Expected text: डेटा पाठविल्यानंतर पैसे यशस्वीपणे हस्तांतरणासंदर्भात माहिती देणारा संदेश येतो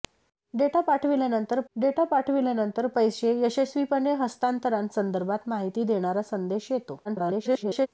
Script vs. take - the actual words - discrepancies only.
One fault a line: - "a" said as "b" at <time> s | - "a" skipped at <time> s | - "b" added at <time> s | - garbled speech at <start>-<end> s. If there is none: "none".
- "डेटा पाठविल्यानंतर" added at 1.8 s
- garbled speech at 7.0-7.9 s